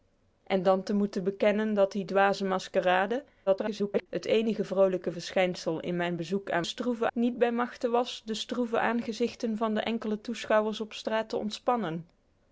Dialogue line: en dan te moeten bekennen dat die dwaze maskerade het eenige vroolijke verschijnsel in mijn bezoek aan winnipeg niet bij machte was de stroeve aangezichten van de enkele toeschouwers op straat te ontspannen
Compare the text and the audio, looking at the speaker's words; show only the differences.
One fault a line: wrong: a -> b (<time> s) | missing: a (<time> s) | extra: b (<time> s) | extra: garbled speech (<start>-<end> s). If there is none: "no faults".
extra: garbled speech (3.5-4.1 s)
wrong: winnipeg -> stroeve (6.6 s)